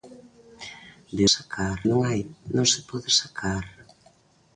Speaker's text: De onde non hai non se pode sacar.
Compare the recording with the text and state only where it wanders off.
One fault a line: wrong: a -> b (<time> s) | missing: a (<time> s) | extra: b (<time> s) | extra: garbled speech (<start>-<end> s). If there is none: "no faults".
wrong: onde -> sacar (1.4 s)